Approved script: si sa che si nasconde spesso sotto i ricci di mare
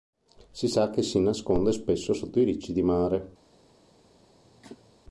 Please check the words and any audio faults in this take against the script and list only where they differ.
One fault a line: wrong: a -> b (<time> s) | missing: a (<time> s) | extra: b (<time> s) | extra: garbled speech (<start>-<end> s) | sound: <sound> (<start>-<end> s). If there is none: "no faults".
sound: cough (4.4-4.9 s)